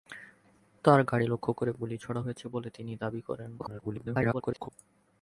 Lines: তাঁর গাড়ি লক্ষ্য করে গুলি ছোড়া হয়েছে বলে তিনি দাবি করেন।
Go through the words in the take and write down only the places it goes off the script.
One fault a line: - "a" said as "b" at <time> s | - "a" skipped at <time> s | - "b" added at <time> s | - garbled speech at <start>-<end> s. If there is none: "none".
- garbled speech at 3.6-4.7 s